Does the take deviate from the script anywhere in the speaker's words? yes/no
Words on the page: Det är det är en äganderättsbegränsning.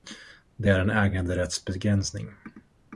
yes